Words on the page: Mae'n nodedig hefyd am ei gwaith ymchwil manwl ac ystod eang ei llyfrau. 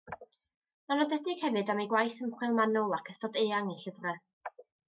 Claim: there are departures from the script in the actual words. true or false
false